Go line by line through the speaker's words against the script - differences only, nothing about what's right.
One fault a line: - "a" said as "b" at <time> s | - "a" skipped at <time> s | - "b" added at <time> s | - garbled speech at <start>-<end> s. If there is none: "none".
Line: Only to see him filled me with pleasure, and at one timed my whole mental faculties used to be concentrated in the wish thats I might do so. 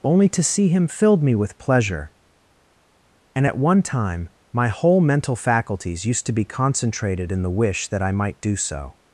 - "timed" said as "time" at 3.8 s
- "thats" said as "that" at 7.9 s